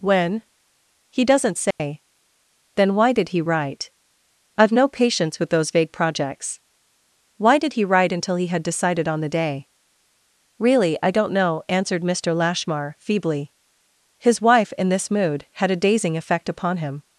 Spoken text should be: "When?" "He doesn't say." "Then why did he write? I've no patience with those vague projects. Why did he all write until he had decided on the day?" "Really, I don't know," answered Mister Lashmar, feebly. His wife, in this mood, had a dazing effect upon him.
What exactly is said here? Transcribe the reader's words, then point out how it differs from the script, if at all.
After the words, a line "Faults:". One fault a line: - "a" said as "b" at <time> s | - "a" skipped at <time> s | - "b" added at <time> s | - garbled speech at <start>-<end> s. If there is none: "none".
"When?" "He doesn't say." "Then why did he write? I've no patience with those vague projects. Why did he write until he had decided on the day?" "Really, I don't know," answered Mister Lashmar, feebly. His wife, in this mood, had a dazing effect upon him.
Faults:
- "all" skipped at 7.8 s